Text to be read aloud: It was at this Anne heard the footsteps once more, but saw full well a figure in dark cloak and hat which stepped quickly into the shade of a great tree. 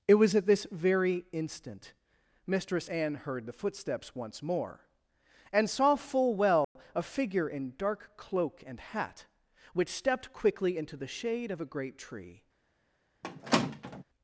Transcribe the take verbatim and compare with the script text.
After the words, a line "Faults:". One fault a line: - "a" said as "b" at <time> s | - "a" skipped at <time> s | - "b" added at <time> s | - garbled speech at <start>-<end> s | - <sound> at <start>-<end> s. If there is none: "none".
It was at this very instant Mistress Anne heard the footsteps once more, and saw full well a figure in dark cloak and hat which stepped quickly into the shade of a great tree.
Faults:
- "very instant Mistress" added at 0.7 s
- "but" said as "and" at 5.5 s
- dropout at 6.6-6.8 s
- squeak at 13.2-14.0 s